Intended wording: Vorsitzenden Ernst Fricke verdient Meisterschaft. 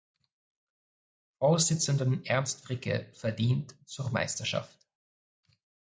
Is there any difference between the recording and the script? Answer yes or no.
yes